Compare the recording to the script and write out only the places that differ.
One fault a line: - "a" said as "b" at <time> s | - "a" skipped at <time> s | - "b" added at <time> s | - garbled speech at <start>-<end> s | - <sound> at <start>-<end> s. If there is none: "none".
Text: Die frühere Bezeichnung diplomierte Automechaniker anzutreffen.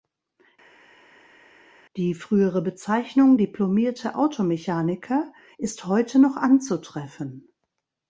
- "ist heute noch" added at 5.6 s